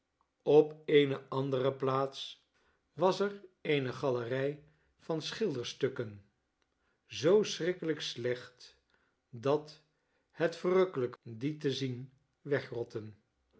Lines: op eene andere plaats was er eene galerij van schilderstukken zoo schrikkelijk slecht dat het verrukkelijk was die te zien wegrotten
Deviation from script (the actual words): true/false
true